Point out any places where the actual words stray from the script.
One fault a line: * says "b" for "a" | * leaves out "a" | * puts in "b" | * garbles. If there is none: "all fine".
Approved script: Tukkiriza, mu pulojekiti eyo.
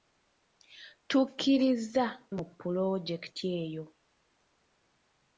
all fine